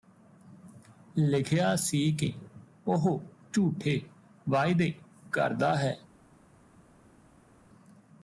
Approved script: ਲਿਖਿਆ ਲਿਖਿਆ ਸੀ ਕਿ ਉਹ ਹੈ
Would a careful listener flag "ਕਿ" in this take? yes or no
no